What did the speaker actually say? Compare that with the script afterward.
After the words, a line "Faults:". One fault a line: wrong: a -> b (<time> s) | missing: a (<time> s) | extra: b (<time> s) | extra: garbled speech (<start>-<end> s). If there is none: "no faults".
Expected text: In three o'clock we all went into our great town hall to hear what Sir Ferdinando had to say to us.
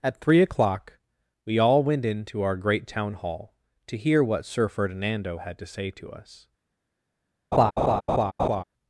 At three o'clock we all went into our great town hall to hear what Sir Ferdinando had to say to us.
Faults:
wrong: In -> At (0.0 s)